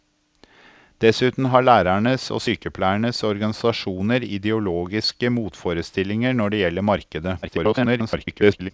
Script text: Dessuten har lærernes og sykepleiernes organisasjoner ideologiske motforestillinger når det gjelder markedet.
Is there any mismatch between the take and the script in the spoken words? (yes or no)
yes